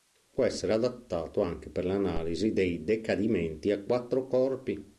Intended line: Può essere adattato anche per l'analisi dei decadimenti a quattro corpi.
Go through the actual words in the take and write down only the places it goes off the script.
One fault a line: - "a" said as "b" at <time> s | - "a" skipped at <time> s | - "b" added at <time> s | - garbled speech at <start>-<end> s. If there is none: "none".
none